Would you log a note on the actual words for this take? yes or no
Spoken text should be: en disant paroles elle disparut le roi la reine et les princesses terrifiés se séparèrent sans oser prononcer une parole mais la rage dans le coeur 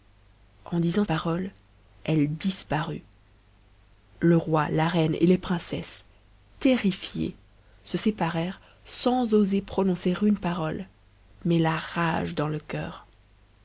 no